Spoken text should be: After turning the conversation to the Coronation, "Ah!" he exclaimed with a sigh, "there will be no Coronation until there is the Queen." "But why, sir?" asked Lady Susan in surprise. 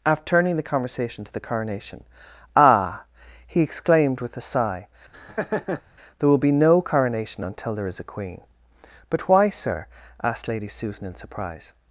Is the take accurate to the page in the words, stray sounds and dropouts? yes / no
no